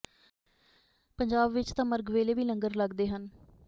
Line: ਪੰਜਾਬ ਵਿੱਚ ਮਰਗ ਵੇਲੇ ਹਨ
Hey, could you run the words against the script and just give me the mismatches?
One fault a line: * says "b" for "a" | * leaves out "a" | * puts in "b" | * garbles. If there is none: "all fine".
* puts in "ਤਾਂ"
* puts in "ਵੀ ਲੰਗਰ ਲੱਗਦੇ"